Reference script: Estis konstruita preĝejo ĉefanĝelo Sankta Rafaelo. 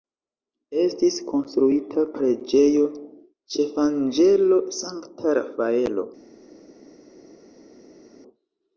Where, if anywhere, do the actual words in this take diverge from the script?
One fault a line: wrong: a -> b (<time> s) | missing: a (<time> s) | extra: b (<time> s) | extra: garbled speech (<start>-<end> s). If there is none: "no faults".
no faults